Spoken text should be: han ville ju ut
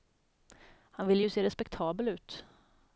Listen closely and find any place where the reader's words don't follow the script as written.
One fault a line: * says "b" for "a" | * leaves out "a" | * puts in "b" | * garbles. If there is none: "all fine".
* puts in "se respektabel"